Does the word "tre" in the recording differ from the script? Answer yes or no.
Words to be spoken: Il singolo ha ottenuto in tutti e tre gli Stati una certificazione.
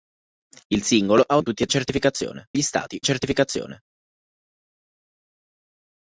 yes